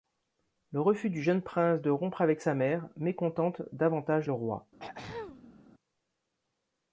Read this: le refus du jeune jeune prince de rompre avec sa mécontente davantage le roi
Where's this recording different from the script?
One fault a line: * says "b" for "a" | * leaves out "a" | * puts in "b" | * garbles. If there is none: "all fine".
* leaves out "jeune"
* puts in "mère"